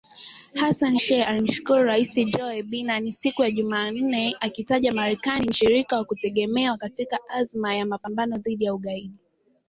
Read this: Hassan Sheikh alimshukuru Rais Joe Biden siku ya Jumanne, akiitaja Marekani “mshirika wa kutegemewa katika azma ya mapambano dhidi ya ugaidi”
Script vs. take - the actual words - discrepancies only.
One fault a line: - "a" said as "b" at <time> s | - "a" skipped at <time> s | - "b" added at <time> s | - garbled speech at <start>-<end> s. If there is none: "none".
none